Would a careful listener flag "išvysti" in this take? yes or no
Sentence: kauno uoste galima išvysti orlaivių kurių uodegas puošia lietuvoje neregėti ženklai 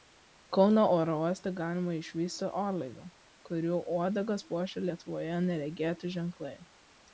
no